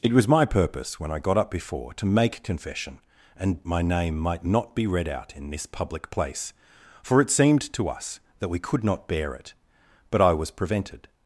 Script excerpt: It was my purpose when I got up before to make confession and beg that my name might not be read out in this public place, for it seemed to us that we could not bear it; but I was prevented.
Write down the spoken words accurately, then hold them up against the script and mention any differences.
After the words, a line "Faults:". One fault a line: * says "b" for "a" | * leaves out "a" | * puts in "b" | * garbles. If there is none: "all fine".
It was my purpose when I got up before to make confession and my name might not be read out in this public place, for it seemed to us that we could not bear it; but I was prevented.
Faults:
* leaves out "beg that"